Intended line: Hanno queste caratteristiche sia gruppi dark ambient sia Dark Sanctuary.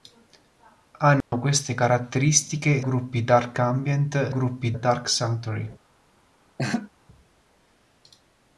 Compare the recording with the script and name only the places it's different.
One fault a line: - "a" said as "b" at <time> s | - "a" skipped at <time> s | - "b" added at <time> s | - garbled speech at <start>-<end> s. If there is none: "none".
- "sia" skipped at 2.8 s
- "sia" said as "gruppi" at 4.3 s